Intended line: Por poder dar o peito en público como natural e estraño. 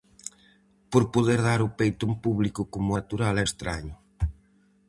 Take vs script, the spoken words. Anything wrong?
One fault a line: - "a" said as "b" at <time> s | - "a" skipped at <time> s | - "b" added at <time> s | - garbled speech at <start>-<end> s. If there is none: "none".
none